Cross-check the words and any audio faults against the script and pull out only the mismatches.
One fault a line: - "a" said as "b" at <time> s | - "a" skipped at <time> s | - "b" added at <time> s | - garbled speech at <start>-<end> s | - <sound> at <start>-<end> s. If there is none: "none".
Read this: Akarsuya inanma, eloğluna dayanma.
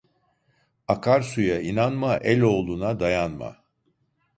none